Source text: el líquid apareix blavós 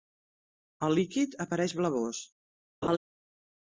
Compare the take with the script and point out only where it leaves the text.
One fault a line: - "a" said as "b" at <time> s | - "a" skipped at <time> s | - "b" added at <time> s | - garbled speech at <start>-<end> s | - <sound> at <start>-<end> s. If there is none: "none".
- laugh at 2.8-3.0 s